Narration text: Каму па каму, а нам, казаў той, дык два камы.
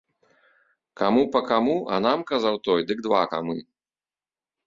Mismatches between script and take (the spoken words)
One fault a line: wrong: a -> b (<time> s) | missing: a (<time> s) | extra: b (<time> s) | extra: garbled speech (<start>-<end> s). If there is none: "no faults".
no faults